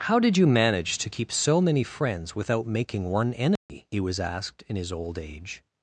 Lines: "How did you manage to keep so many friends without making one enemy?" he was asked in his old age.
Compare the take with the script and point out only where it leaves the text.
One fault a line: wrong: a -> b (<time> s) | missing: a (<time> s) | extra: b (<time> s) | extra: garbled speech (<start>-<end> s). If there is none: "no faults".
no faults